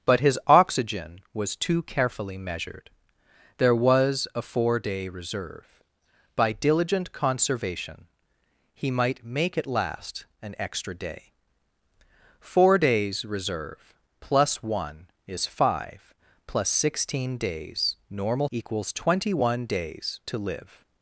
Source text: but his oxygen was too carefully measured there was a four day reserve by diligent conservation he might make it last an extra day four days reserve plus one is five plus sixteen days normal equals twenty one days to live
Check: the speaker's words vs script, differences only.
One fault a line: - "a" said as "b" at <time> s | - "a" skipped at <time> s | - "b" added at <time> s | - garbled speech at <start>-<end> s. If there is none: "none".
none